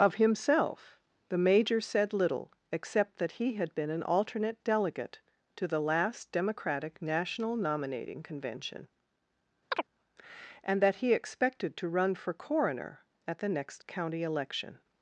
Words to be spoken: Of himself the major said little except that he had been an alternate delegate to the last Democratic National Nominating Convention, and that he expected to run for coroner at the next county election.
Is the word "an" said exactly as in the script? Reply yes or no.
yes